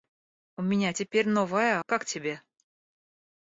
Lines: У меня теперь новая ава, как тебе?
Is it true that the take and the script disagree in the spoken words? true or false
true